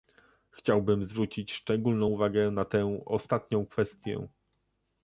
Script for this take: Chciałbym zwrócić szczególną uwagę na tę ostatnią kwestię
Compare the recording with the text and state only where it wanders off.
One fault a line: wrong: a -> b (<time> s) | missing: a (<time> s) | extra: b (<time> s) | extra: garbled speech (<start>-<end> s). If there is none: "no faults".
no faults